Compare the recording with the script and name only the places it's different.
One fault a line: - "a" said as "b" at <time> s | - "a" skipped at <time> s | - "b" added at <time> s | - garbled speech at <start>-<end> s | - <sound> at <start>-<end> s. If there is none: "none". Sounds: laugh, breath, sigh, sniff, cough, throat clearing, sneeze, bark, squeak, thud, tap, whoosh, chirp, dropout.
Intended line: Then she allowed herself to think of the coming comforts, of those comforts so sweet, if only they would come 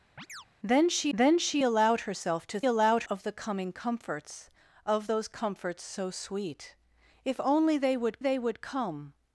- chirp at 0.2-0.5 s
- "then she" added at 1.1 s
- "think" said as "allowed" at 2.6 s
- "they would" added at 8.2 s